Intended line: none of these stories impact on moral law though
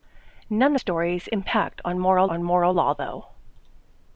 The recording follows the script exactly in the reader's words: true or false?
false